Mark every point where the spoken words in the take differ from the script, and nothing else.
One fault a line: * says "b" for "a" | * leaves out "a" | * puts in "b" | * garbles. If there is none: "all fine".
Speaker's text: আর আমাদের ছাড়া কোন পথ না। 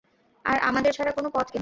all fine